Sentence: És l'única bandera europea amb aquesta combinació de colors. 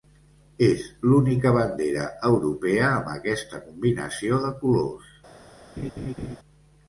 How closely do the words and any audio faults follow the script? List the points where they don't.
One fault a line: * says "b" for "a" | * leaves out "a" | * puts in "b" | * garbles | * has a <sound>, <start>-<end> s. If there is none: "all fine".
* has a laugh, 5.8-6.4 s